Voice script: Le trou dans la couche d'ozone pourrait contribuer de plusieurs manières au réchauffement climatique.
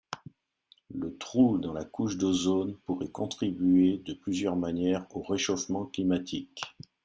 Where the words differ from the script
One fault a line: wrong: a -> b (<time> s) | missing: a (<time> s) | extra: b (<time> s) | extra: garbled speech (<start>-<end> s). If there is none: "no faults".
no faults